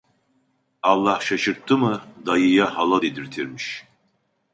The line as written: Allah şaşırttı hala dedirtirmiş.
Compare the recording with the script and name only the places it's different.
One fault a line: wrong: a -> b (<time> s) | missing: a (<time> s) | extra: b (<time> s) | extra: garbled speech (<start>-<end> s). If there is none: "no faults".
extra: mı dayıya (1.8 s)